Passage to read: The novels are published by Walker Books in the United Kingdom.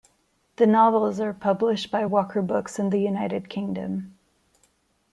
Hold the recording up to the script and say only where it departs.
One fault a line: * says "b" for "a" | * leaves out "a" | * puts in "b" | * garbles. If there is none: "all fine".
all fine